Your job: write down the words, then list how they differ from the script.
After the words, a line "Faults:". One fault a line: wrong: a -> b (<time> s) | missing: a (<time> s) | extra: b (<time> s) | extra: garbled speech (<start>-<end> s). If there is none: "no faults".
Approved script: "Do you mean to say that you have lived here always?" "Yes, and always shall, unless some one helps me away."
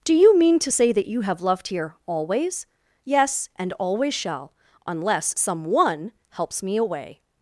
"Do you mean to say that you have loved here always?" "Yes, and always shall, unless some one helps me away."
Faults:
wrong: lived -> loved (1.4 s)